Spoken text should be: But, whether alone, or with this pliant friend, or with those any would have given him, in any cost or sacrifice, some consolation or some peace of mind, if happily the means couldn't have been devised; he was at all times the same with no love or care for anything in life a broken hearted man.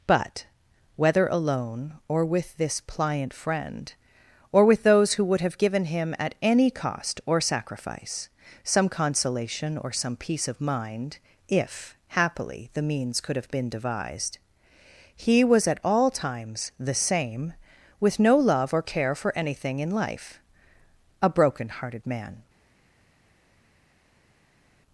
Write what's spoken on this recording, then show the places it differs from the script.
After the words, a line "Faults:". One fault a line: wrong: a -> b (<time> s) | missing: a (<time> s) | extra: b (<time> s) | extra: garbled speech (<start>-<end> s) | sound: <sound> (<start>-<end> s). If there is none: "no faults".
But, whether alone, or with this pliant friend, or with those who would have given him, at any cost or sacrifice, some consolation or some peace of mind, if happily the means could have been devised; he was at all times the same with no love or care for anything in life a broken hearted man.
Faults:
wrong: any -> who (5.1 s)
wrong: in -> at (6.2 s)
wrong: couldn't -> could (13.2 s)